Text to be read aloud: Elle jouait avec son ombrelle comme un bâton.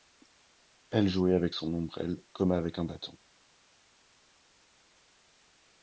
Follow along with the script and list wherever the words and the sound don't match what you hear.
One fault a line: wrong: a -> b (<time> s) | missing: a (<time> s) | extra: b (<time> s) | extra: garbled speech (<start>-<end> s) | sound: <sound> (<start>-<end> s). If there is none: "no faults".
extra: avec (2.5 s)